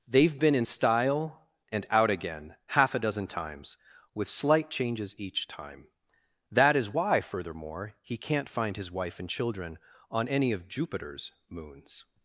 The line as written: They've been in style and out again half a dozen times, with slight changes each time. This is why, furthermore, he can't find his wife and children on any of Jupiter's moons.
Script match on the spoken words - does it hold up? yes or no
no